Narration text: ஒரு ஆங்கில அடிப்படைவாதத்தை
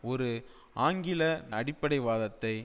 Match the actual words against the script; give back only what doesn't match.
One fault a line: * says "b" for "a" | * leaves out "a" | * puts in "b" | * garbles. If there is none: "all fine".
all fine